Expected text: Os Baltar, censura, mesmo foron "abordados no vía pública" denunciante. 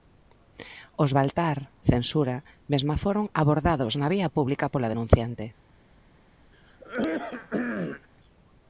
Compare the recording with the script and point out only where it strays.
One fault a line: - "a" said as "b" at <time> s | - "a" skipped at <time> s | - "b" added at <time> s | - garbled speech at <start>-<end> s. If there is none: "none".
- "no" said as "na" at 4.0 s
- "pola" added at 4.7 s